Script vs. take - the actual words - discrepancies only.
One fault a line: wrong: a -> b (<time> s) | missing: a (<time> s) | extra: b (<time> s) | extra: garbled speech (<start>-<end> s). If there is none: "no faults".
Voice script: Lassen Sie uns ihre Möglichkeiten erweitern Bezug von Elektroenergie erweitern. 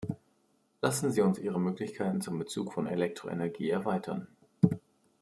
wrong: erweitern -> zum (2.2 s)